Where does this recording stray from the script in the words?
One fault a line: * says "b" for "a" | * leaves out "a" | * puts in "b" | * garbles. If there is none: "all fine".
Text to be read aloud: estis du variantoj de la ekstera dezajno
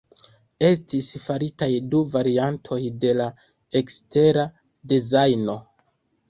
* puts in "faritaj"